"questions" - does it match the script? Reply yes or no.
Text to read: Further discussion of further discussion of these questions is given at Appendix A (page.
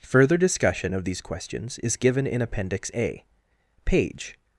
yes